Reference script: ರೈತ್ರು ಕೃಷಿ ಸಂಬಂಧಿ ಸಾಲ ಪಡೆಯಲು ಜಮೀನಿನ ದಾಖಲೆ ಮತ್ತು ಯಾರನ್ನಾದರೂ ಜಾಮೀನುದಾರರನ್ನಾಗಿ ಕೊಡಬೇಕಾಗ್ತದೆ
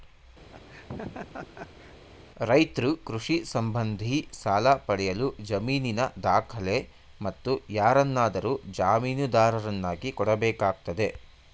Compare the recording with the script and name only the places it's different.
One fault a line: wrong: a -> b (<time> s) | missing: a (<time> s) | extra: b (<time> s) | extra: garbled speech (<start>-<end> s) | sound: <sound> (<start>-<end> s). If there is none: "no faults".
sound: laugh (0.5-2.0 s)